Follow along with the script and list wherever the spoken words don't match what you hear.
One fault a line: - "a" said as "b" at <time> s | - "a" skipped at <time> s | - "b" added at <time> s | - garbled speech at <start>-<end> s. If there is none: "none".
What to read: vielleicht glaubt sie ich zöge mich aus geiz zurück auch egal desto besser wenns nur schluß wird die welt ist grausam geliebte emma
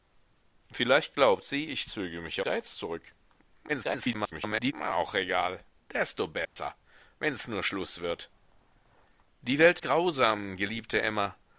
- "aus" skipped at 2.4 s
- garbled speech at 3.7-4.7 s
- "ist" skipped at 9.8 s